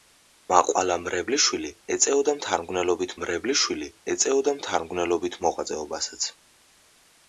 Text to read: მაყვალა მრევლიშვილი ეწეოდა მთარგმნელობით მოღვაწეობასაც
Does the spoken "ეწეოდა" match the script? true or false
true